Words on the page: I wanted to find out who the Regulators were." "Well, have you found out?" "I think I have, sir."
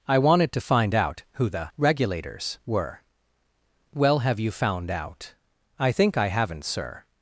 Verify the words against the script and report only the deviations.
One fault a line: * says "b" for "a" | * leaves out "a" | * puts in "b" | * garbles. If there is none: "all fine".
* says "haven't" for "have"